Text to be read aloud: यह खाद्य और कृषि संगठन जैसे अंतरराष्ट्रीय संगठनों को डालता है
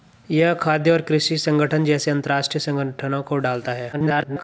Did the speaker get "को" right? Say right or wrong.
right